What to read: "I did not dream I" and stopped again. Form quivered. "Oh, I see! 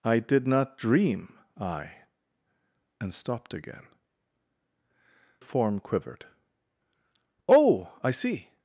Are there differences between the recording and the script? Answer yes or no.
no